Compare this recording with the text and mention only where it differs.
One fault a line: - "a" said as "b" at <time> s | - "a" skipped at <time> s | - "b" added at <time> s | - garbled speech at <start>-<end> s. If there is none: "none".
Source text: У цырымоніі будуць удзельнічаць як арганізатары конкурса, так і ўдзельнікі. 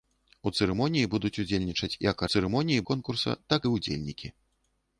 - "арганізатары" said as "цырымоніі" at 2.3 s